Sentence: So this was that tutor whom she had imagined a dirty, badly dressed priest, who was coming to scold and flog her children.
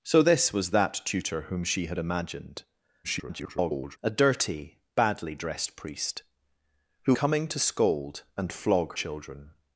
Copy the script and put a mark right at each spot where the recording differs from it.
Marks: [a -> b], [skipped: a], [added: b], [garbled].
So this was that tutor whom she had imagined [garbled] a dirty, badly dressed priest, who [skipped: was] coming to scold and flog [skipped: her] children.